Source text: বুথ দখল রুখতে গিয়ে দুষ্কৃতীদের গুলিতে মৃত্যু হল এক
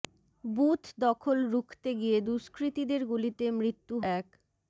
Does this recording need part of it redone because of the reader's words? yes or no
yes